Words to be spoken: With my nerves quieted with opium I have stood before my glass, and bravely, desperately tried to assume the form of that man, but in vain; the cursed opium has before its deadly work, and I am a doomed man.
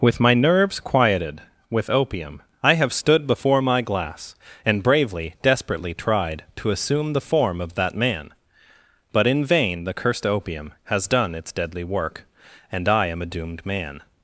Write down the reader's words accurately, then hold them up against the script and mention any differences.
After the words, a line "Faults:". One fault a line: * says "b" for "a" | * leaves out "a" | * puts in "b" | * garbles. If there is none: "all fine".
With my nerves quieted with opium I have stood before my glass, and bravely, desperately tried to assume the form of that man, but in vain; the cursed opium has done its deadly work, and I am a doomed man.
Faults:
* says "done" for "before"